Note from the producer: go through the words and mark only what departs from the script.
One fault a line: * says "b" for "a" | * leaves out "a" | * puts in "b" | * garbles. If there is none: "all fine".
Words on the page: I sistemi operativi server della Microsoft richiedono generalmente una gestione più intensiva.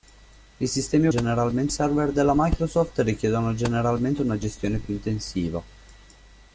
* says "generalmente" for "operativi"